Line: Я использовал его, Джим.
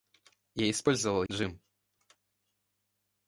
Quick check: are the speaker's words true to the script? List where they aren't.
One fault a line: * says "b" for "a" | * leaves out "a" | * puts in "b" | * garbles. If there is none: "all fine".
* leaves out "его"